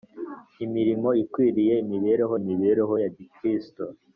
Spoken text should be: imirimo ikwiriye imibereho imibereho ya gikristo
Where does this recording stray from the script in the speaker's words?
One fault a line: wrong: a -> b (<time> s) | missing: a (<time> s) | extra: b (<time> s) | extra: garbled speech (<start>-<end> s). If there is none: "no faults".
no faults